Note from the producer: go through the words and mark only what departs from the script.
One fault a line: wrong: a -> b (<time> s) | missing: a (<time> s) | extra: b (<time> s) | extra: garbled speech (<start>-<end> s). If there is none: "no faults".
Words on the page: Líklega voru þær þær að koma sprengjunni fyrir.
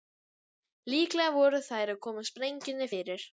missing: þær (1.9 s)